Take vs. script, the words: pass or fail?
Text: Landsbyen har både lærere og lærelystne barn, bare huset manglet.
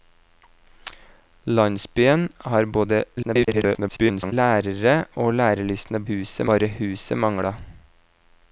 fail